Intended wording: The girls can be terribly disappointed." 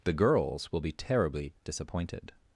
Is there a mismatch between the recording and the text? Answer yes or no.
yes